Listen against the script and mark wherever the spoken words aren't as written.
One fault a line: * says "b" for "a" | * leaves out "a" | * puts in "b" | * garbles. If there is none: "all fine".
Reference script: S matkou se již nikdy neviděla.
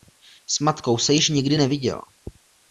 all fine